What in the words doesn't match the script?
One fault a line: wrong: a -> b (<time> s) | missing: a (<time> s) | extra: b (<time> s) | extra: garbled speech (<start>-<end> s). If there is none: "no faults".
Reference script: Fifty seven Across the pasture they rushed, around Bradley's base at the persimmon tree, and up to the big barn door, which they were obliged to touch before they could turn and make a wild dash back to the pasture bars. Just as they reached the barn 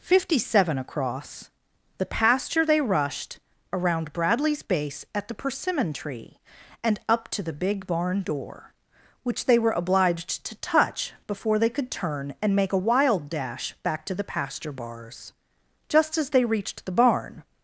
no faults